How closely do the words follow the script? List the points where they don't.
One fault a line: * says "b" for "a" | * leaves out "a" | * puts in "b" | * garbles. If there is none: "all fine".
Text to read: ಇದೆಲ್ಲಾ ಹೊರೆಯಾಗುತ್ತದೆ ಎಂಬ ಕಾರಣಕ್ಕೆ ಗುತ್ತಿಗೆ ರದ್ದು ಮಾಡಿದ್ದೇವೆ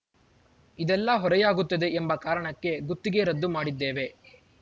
all fine